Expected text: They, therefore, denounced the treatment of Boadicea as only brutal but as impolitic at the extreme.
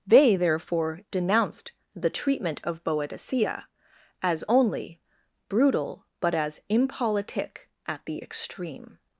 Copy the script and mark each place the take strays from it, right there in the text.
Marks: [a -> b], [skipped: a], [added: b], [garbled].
They, therefore, denounced the treatment of Boadicea as only brutal but as impolitic at the extreme.